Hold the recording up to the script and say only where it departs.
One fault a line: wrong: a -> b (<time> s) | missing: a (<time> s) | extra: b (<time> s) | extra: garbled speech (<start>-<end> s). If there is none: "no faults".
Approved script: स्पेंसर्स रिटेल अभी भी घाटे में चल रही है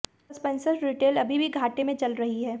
no faults